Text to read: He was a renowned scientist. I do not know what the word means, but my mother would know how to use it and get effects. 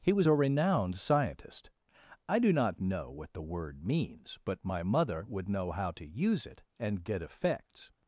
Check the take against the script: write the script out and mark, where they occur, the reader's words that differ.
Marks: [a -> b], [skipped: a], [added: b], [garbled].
He was a renowned scientist. I do not know what the word means, but my mother would know how to use it and get effects.